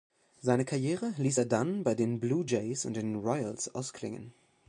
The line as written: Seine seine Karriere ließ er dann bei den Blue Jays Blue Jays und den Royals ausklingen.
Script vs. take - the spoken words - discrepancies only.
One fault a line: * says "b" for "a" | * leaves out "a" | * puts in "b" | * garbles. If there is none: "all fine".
* leaves out "seine"
* leaves out "Blue Jays"